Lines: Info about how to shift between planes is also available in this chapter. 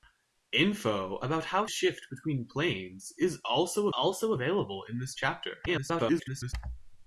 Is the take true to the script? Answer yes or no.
no